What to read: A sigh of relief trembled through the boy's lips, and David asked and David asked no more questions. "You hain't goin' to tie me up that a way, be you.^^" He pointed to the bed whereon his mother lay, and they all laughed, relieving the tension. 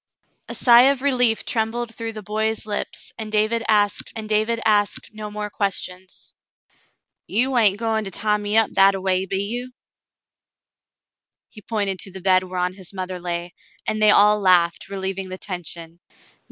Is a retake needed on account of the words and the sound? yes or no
no